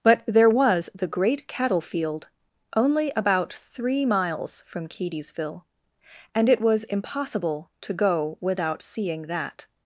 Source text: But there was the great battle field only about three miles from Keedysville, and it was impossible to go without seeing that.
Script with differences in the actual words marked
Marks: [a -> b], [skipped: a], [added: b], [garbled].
But there was the great [battle -> cattle] field only about three miles from Keedysville, and it was impossible to go without seeing that.